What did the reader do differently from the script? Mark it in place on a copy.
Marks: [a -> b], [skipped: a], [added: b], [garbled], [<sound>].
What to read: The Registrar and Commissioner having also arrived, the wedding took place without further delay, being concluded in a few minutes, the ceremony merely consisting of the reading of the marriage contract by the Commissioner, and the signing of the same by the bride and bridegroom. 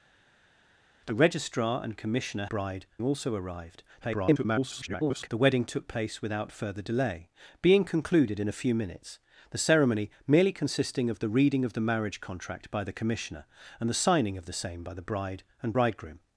The Registrar and Commissioner [having -> bride] also arrived, [garbled] the wedding took place without further delay, being concluded in a few minutes, the ceremony merely consisting of the reading of the marriage contract by the Commissioner, and the signing of the same by the bride and bridegroom.